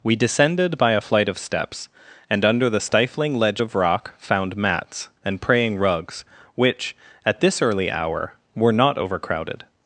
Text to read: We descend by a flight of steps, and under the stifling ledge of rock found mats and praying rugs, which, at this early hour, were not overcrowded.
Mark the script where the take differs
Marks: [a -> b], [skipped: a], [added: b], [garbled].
We [descend -> descended] by a flight of steps, and under the stifling ledge of rock found mats and praying rugs, which, at this early hour, were not overcrowded.